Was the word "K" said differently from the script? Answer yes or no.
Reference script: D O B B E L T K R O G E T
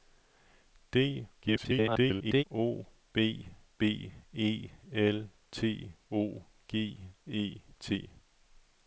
yes